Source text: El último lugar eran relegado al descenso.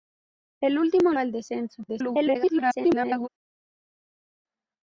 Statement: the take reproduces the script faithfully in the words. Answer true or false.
false